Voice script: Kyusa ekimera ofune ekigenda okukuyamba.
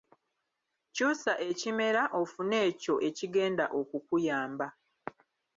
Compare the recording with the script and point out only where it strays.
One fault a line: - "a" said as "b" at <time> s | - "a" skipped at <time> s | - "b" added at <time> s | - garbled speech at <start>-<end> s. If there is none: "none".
- "ekyo" added at 2.7 s